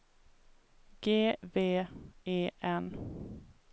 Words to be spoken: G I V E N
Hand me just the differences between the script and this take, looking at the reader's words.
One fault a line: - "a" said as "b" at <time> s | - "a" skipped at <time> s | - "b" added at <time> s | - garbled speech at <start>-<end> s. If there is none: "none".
- "I" skipped at 1.4 s